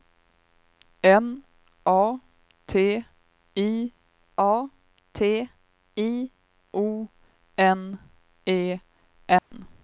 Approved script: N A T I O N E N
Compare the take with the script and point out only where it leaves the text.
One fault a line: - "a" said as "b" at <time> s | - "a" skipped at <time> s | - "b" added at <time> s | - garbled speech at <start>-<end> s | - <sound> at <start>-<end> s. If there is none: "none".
- "A T I" added at 4.4 s
- dropout at 9.4-9.5 s